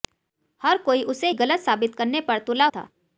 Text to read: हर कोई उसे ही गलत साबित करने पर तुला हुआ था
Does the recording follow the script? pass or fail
fail